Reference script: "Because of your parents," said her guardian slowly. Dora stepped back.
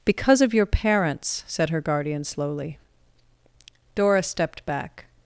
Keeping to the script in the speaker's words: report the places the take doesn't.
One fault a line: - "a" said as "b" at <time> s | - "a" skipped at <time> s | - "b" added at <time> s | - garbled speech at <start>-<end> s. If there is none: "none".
none